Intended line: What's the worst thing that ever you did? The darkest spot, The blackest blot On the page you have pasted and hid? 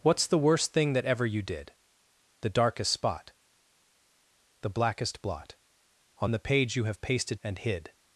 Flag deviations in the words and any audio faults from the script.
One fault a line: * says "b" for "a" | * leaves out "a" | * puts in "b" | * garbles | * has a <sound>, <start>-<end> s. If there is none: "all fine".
all fine